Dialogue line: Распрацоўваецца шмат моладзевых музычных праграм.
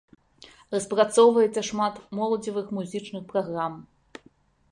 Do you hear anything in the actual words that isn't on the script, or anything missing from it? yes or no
no